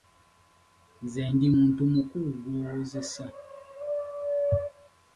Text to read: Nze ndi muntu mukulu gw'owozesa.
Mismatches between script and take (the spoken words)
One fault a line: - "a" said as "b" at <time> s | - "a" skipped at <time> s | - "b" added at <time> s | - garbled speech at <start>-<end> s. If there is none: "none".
none